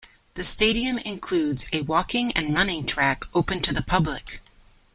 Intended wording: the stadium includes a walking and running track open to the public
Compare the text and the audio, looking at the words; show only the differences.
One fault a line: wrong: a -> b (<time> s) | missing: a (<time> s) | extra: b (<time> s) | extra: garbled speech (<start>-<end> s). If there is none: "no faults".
no faults